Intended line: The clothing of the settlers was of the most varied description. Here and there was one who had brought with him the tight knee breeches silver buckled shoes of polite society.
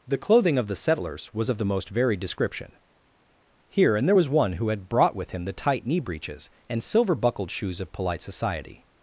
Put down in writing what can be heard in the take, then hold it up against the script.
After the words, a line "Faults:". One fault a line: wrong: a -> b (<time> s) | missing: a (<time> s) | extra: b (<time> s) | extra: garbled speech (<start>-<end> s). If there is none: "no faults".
The clothing of the settlers was of the most varied description. Here and there was one who had brought with him the tight knee breeches and silver buckled shoes of polite society.
Faults:
extra: and (6.7 s)